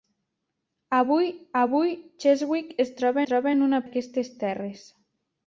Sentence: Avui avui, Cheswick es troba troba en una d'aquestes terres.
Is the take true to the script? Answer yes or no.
yes